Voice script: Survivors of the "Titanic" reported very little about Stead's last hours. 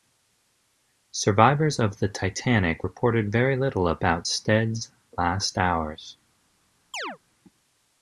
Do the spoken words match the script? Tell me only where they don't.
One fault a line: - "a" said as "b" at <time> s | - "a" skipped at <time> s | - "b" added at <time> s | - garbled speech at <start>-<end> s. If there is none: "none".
none